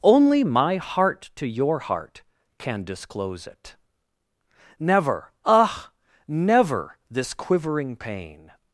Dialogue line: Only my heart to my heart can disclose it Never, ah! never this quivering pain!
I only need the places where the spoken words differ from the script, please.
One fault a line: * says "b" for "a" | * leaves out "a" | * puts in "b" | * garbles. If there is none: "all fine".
* says "your" for "my"